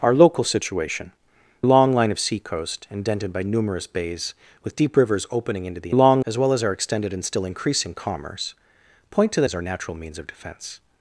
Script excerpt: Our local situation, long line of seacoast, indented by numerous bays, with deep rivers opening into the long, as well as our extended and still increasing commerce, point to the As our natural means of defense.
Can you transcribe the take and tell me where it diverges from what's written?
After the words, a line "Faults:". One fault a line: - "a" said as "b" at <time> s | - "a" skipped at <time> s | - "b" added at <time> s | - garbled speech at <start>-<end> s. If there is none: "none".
Our local situation, long line of seacoast, indented by numerous bays, with deep rivers opening into the long, as well as our extended and still increasing commerce, point to the As our natural means of defense.
Faults:
none